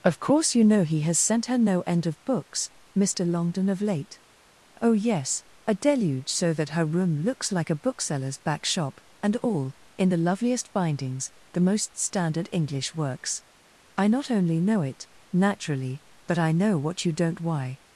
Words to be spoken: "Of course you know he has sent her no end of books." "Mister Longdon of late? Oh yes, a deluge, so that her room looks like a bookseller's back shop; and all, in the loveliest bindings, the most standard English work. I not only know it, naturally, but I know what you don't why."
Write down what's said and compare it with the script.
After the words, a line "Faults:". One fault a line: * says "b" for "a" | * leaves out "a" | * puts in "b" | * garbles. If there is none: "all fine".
"Of course you know he has sent her no end of books." "Mister Longdon of late? Oh yes, a deluge, so that her room looks like a bookseller's back shop; and all, in the loveliest bindings, the most standard English works. I not only know it, naturally, but I know what you don't why."
Faults:
* says "works" for "work"